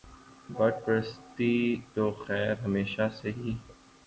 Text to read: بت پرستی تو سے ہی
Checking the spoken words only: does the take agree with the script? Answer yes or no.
no